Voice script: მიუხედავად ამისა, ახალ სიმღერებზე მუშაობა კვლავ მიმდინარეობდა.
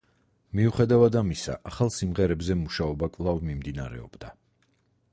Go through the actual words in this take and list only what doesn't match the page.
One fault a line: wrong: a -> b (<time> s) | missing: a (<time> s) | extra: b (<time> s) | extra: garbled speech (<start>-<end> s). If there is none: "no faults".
no faults